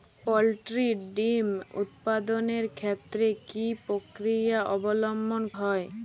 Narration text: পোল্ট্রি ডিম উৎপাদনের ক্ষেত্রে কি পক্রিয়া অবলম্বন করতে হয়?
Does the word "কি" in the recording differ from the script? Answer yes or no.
no